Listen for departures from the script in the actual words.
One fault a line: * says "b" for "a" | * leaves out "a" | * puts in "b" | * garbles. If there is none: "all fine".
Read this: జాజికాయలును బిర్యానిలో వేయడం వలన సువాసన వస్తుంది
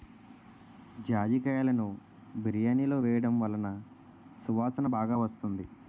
* puts in "బాగా"